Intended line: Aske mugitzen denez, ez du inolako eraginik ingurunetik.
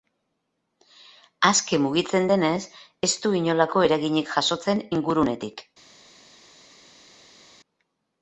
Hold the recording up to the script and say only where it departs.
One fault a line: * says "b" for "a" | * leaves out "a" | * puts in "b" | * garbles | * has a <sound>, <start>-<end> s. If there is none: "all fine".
* puts in "jasotzen"